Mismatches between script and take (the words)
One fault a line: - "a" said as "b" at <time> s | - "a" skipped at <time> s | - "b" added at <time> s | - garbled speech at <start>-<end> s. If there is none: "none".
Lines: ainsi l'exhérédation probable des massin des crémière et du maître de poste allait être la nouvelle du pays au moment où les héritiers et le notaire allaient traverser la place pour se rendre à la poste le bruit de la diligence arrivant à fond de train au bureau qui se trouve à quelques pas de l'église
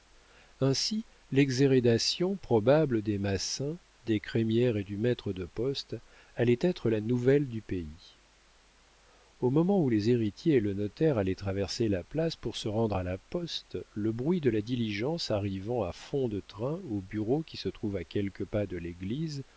none